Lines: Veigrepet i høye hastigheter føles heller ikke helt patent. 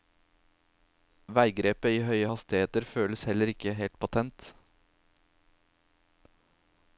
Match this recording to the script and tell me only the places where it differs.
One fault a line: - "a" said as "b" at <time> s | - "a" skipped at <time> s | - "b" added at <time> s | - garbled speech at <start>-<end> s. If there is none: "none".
none